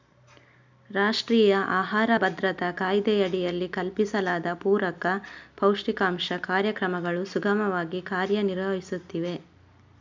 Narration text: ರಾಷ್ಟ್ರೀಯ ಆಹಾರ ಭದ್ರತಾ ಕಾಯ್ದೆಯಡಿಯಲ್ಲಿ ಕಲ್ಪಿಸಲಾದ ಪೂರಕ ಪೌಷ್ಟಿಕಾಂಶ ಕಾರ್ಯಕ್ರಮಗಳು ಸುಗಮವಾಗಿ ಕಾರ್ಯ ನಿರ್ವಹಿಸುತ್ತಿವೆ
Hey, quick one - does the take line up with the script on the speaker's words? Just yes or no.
yes